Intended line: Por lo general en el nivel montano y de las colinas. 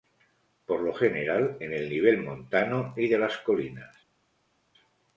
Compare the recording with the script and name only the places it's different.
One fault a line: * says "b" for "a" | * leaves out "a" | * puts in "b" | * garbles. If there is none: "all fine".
all fine